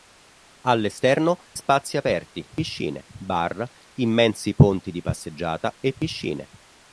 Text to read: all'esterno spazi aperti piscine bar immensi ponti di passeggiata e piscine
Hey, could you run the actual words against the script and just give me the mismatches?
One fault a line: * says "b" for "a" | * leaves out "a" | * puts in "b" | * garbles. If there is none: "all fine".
all fine